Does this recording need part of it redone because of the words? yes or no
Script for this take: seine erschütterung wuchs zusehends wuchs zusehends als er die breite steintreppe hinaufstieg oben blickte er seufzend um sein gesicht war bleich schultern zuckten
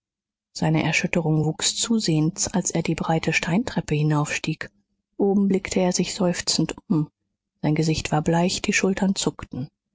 yes